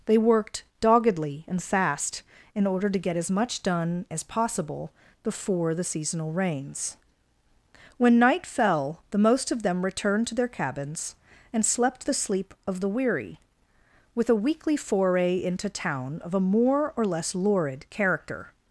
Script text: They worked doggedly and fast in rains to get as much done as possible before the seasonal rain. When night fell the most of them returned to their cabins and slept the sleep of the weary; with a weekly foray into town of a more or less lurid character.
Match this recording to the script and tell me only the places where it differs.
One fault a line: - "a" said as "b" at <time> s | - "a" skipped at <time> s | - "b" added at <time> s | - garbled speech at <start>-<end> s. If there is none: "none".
- "rains" said as "order" at 2.6 s
- "rain" said as "rains" at 6.3 s